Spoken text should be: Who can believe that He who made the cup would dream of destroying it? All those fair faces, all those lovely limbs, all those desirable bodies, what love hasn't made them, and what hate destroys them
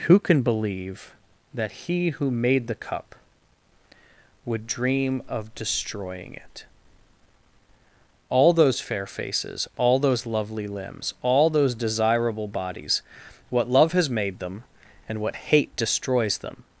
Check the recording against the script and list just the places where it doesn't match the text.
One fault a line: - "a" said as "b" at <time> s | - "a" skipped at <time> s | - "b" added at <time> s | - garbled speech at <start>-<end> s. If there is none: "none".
- "hasn't" said as "has" at 13.9 s